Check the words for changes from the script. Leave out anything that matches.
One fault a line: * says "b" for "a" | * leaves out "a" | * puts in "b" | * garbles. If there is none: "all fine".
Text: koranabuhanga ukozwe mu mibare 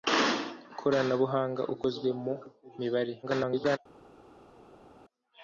* garbles